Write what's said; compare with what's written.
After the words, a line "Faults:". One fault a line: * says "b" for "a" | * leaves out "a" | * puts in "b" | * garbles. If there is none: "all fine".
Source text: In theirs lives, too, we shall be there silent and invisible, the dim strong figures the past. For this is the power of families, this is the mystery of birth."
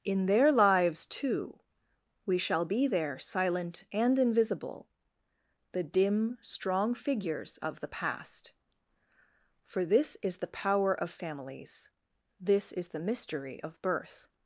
In their lives, too, we shall be there silent and invisible, the dim strong figures of the past. For this is the power of families, this is the mystery of birth."
Faults:
* says "their" for "theirs"
* puts in "of"